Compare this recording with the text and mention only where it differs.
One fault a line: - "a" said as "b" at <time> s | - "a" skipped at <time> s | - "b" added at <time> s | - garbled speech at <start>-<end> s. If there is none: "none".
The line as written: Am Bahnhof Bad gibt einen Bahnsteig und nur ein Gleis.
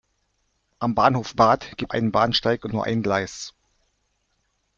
none